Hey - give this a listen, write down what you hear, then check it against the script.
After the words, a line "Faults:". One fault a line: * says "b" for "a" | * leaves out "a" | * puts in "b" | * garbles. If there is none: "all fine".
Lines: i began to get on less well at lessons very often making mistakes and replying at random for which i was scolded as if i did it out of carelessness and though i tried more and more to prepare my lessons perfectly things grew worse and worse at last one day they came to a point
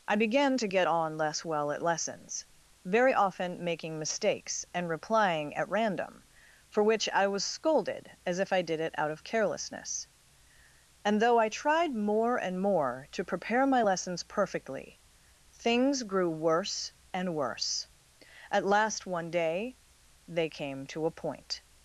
i began to get on less well at lessons very often making mistakes and replying at random for which i was scolded as if i did it out of carelessness and though i tried more and more to prepare my lessons perfectly things grew worse and worse at last one day they came to a point
Faults:
all fine